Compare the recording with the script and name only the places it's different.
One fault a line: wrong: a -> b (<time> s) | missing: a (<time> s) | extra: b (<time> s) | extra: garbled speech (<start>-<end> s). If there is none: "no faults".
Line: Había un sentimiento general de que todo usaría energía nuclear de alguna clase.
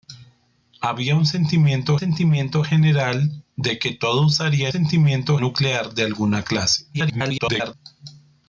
extra: sentimiento (1.9 s)
wrong: energía -> sentimiento (4.7 s)
extra: garbled speech (6.9-7.7 s)